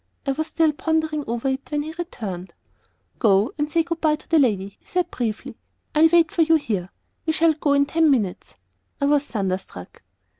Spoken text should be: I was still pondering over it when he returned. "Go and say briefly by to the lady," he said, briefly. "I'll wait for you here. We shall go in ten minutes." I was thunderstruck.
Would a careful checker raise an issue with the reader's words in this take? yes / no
yes